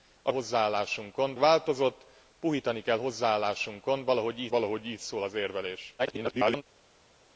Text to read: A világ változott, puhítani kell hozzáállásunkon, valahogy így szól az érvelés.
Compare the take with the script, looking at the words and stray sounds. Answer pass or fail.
fail